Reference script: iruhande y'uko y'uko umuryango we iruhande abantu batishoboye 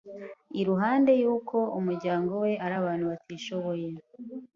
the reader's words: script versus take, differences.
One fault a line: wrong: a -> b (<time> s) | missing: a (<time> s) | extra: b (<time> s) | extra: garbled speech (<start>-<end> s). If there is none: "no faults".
missing: y'uko (1.6 s)
wrong: iruhande -> ari (2.6 s)